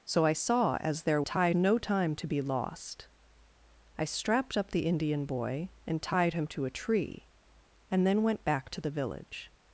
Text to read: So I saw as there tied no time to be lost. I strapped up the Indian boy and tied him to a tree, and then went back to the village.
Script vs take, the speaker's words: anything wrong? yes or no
no